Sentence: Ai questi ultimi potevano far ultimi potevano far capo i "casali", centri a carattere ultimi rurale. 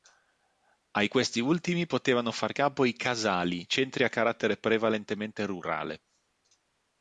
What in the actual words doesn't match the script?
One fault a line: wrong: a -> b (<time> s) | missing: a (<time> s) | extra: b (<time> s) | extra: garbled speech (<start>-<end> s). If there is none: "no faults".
missing: ultimi potevano far (2.5 s)
wrong: ultimi -> prevalentemente (4.6 s)